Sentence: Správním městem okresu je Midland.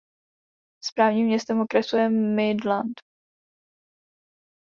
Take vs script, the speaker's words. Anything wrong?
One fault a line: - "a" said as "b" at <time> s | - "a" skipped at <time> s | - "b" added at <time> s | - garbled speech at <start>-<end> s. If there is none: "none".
none